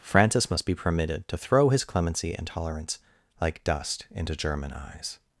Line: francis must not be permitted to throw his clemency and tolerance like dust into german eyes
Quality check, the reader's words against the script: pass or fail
fail